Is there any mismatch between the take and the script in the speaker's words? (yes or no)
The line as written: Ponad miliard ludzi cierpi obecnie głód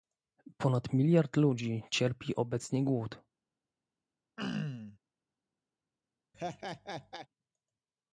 no